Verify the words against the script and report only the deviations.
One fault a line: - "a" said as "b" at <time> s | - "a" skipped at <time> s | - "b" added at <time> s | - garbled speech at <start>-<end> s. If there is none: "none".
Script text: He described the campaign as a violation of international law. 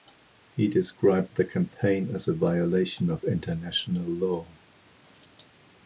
none